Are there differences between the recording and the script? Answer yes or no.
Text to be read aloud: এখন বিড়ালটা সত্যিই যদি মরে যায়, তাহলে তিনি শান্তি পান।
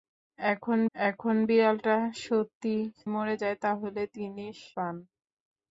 yes